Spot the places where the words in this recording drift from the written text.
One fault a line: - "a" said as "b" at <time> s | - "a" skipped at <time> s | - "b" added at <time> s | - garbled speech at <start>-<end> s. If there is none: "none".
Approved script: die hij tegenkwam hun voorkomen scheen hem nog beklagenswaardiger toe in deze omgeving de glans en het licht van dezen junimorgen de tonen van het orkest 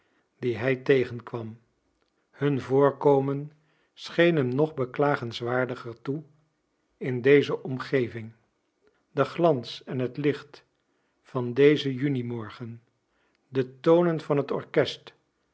none